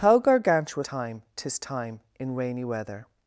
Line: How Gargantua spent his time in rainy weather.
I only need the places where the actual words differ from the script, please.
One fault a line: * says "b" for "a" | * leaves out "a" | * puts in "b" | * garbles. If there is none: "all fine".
* says "time" for "spent"